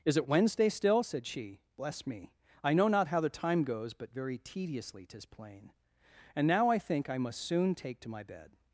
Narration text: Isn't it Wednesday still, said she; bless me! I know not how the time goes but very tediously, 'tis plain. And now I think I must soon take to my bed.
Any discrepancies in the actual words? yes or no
yes